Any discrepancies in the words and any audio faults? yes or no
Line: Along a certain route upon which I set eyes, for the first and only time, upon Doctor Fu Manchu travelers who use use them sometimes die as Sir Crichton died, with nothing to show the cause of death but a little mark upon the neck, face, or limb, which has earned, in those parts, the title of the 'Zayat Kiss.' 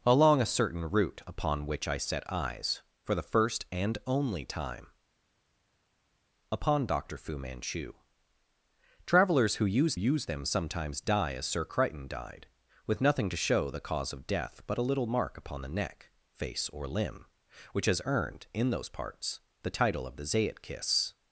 no